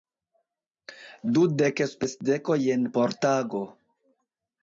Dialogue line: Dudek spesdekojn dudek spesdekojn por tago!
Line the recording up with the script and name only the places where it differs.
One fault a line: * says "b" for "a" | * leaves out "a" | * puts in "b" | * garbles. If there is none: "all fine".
* leaves out "dudek spesdekojn"